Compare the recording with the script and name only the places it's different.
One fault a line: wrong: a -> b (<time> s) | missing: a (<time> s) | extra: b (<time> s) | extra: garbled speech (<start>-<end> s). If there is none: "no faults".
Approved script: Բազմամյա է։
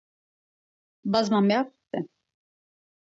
no faults